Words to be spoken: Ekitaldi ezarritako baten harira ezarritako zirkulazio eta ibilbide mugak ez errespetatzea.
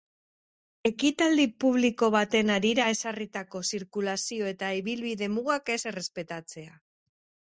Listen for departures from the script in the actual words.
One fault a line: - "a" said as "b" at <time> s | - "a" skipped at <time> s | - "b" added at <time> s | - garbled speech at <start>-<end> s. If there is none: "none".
- "ezarritako" said as "publiko" at 1.6 s